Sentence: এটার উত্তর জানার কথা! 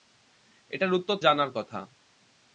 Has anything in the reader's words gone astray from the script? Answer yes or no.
no